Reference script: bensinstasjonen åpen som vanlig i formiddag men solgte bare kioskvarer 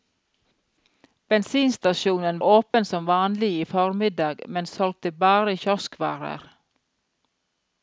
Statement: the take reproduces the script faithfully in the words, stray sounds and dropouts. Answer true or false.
false